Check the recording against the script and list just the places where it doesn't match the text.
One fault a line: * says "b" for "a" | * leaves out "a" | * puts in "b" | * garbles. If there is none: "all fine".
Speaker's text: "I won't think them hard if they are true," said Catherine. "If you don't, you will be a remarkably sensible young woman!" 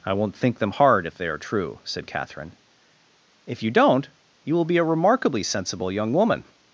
all fine